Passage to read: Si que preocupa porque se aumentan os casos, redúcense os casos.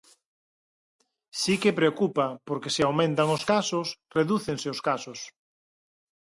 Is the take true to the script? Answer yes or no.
yes